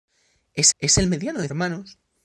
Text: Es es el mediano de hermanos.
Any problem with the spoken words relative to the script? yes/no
no